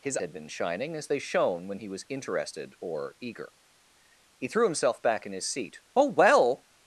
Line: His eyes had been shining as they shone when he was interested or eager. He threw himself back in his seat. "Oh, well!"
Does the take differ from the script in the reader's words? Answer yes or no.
yes